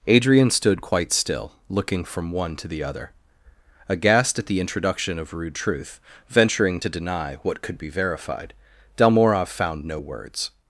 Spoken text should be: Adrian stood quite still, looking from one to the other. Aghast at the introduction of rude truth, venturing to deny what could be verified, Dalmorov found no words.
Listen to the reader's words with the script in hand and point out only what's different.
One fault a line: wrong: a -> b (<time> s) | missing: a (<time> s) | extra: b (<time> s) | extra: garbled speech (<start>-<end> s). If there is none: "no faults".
no faults